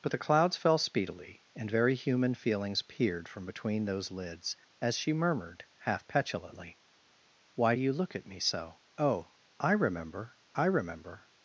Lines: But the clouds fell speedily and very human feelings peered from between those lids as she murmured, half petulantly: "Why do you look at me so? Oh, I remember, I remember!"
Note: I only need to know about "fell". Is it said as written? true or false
true